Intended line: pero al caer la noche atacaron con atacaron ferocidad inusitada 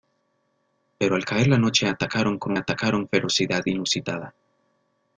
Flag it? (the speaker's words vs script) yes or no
no